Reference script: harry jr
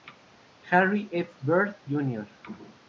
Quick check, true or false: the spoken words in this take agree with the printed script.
false